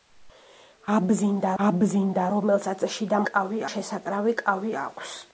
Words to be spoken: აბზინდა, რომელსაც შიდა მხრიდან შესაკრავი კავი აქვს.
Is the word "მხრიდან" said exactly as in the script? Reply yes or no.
no